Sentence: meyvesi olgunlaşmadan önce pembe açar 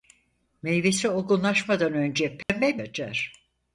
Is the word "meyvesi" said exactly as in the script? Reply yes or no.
yes